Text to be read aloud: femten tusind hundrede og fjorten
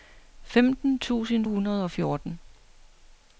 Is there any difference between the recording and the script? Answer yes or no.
no